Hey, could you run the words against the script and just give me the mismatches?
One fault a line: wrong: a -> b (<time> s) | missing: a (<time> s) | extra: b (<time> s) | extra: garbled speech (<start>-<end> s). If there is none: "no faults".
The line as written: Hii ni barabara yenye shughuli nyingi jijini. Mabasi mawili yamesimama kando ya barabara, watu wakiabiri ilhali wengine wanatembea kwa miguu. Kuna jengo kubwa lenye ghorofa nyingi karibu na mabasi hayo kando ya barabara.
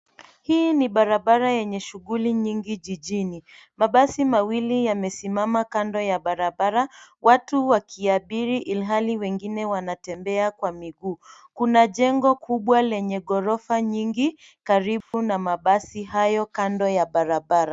no faults